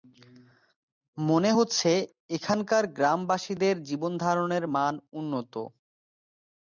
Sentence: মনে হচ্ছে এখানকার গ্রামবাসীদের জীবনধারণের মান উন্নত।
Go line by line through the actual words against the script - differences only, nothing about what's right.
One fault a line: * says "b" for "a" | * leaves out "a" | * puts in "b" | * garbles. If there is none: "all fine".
all fine